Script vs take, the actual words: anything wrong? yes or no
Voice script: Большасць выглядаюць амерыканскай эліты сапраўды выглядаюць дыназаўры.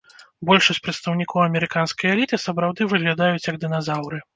yes